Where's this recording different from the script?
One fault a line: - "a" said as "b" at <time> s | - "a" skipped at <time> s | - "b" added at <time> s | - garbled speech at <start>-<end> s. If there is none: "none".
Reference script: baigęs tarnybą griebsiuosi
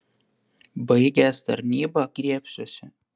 none